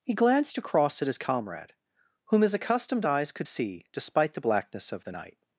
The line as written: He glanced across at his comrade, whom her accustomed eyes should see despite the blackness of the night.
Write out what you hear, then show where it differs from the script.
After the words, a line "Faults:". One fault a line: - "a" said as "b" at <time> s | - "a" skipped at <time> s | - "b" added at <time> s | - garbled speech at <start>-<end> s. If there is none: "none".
He glanced across at his comrade, whom his accustomed eyes could see despite the blackness of the night.
Faults:
- "her" said as "his" at 2.4 s
- "should" said as "could" at 3.3 s